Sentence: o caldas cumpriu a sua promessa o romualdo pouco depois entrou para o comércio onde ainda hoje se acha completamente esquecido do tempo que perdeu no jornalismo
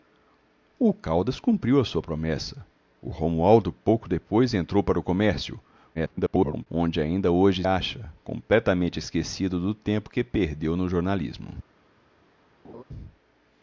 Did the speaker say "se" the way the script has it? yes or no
no